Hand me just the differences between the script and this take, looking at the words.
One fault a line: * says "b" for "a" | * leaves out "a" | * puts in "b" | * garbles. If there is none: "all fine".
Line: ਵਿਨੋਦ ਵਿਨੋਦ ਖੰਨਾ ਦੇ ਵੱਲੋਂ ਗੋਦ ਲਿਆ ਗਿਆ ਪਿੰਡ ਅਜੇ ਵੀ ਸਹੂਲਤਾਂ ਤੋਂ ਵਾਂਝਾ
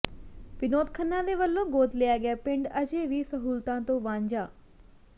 * leaves out "ਵਿਨੋਦ"